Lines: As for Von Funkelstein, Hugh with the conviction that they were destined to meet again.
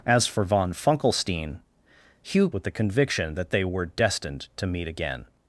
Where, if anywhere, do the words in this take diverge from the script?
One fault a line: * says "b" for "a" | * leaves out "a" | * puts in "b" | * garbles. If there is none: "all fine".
all fine